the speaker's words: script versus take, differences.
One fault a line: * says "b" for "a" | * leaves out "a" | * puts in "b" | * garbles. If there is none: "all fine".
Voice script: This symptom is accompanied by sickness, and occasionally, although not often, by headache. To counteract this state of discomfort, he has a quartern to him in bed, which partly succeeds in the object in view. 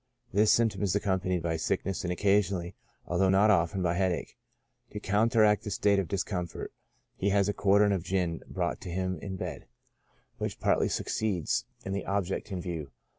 * puts in "of gin brought"